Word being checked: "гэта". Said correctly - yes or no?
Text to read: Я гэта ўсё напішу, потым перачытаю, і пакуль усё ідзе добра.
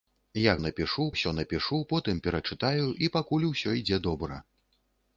no